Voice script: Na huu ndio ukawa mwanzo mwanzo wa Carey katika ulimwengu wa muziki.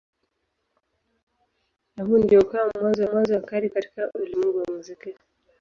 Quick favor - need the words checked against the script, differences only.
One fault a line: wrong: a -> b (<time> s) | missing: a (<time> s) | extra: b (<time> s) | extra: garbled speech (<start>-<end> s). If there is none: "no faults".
no faults